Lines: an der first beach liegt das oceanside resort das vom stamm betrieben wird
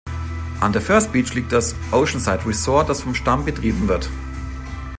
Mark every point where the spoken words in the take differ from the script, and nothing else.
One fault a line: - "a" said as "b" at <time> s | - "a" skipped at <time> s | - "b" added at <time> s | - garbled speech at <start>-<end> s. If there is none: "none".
none